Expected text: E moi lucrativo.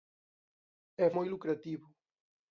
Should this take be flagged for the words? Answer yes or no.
no